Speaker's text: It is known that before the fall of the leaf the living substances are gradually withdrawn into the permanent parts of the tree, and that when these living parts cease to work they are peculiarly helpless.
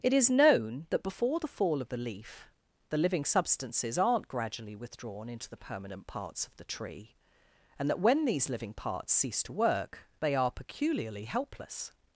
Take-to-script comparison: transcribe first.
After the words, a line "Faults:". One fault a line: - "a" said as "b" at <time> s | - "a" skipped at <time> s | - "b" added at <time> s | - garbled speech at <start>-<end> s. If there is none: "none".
It is known that before the fall of the leaf the living substances aren't gradually withdrawn into the permanent parts of the tree, and that when these living parts cease to work they are peculiarly helpless.
Faults:
- "are" said as "aren't" at 4.0 s